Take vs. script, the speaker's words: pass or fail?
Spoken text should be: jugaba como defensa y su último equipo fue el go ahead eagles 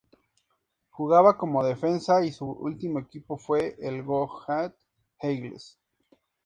pass